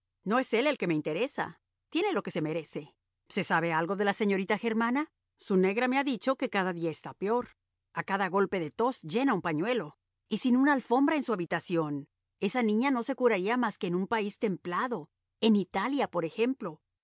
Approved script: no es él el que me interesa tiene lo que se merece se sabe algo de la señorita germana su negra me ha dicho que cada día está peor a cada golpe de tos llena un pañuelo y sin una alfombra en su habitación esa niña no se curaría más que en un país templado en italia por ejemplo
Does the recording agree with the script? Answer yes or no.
yes